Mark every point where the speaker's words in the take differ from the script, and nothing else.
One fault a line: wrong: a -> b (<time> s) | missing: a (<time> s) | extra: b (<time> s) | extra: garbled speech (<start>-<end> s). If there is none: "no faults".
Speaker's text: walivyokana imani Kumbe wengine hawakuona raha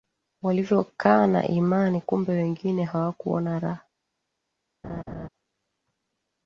no faults